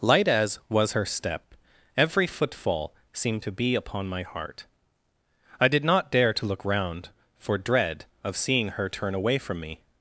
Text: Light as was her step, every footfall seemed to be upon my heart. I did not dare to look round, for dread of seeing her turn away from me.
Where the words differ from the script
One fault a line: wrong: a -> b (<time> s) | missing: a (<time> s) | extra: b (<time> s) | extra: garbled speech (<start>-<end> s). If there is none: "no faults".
no faults